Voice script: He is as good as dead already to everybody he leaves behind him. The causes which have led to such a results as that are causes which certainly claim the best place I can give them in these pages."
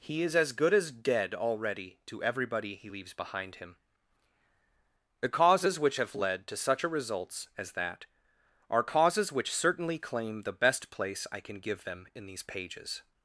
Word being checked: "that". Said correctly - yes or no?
yes